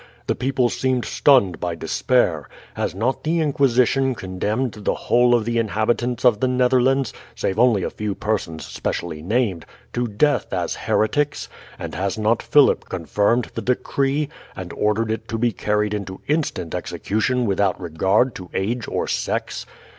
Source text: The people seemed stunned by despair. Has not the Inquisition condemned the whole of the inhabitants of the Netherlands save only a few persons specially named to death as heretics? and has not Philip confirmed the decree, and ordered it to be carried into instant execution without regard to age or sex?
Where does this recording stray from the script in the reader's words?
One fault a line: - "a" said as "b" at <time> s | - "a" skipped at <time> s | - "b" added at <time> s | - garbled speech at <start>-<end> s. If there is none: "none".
none